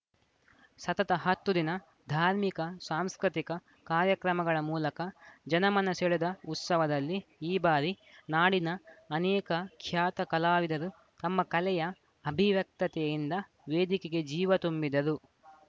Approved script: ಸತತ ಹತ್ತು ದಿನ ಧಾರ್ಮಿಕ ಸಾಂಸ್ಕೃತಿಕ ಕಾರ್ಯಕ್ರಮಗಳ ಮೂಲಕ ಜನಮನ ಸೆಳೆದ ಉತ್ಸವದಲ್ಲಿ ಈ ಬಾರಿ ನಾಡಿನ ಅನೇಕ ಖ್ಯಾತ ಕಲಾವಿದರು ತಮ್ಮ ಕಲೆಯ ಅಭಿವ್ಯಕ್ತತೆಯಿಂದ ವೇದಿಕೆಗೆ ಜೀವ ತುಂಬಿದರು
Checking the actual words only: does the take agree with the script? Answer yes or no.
yes